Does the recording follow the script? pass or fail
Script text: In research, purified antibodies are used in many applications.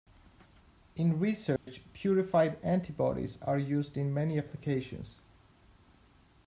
pass